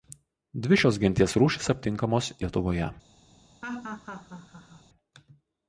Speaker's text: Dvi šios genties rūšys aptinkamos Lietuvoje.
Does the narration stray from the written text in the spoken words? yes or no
no